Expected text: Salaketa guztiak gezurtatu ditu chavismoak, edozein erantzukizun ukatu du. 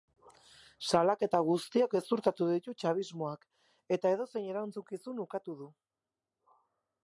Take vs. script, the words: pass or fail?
fail